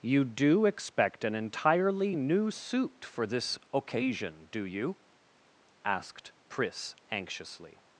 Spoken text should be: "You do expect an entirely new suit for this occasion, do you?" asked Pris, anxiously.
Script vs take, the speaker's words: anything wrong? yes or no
no